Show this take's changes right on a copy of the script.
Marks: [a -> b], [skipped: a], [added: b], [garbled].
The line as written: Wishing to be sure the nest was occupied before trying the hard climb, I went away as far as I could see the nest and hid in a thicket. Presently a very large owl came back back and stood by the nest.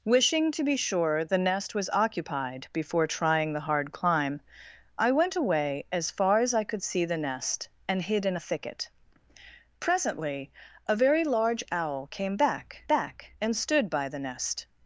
Wishing to be sure the nest was occupied before trying the hard climb, I went away as far as I could see the nest and hid in a thicket. Presently a very large owl came back back and stood by the nest.